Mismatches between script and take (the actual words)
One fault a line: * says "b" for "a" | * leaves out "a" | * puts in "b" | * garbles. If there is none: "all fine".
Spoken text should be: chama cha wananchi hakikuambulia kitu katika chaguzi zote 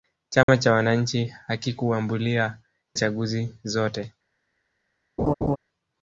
* leaves out "kitu katika"